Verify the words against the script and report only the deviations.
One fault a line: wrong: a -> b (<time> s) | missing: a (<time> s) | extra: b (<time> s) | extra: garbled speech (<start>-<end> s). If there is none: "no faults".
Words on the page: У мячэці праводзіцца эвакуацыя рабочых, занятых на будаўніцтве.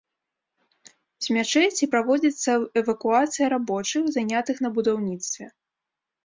wrong: У -> З (1.2 s)